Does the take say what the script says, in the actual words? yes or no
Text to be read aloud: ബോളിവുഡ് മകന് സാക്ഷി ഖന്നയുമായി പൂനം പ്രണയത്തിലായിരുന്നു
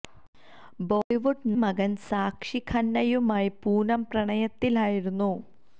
yes